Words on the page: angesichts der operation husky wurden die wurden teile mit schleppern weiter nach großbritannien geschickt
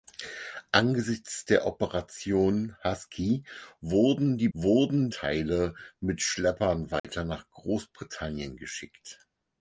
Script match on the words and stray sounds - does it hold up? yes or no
no